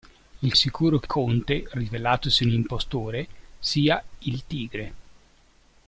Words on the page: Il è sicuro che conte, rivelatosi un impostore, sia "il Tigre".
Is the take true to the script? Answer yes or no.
yes